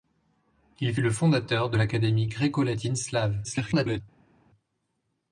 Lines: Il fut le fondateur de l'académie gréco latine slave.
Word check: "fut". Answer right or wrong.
wrong